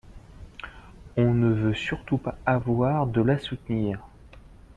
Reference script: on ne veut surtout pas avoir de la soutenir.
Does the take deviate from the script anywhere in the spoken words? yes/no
no